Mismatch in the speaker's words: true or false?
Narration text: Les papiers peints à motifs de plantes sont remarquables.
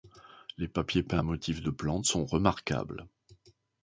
false